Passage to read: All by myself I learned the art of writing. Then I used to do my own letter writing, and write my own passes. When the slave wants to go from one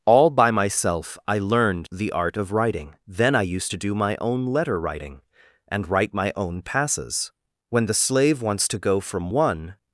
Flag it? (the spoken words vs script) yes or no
no